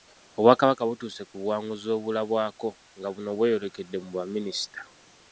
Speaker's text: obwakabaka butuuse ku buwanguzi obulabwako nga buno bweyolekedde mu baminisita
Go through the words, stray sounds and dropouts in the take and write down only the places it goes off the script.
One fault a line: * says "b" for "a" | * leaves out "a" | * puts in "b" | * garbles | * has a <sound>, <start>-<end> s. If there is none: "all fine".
all fine